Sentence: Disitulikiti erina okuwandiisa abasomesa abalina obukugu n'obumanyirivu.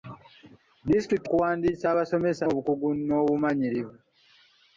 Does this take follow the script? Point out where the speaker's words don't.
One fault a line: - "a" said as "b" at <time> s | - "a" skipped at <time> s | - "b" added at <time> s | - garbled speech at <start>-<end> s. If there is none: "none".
- "erina" skipped at 1.3 s
- "abalina" skipped at 2.4 s